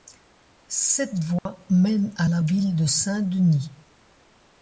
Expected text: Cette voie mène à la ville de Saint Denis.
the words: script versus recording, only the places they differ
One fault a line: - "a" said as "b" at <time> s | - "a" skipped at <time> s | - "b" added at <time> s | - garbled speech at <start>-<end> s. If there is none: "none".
none